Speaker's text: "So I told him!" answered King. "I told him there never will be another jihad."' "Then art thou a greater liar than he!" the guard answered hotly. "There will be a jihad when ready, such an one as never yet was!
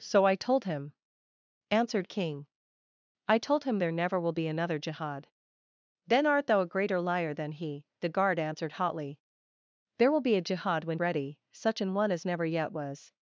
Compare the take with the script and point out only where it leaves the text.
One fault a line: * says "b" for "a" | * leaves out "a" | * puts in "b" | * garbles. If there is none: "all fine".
all fine